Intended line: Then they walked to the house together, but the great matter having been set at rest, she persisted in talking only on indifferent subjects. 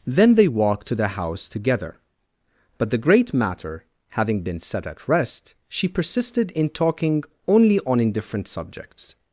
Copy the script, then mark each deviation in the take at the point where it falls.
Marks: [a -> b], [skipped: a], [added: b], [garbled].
Then they walked to the house together, but the great matter having been set at rest, she persisted in talking only on indifferent subjects.